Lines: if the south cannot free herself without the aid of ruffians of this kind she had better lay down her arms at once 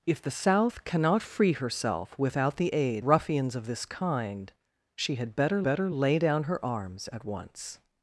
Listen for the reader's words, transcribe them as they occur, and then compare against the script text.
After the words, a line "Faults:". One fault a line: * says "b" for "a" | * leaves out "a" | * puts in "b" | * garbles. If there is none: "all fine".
if the south cannot free herself without the aid ruffians of this kind she had better better lay down her arms at once
Faults:
* leaves out "of"
* puts in "better"